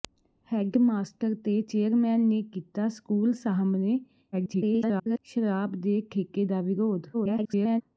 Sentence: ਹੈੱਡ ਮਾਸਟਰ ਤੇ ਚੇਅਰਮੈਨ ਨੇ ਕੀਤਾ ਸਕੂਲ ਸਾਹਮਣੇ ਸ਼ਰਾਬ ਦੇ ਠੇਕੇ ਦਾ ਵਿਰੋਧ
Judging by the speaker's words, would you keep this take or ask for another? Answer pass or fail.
fail